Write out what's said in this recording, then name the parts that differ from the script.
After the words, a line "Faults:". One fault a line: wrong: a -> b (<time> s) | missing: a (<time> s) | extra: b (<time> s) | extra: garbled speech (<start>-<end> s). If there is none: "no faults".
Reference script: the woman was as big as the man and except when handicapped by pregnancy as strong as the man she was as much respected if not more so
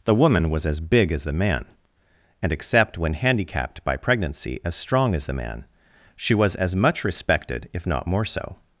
the woman was as big as the man and except when handicapped by pregnancy as strong as the man she was as much respected if not more so
Faults:
no faults